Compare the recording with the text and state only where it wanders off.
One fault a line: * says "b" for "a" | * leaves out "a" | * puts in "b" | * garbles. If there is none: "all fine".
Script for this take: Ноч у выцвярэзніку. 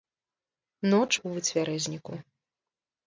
all fine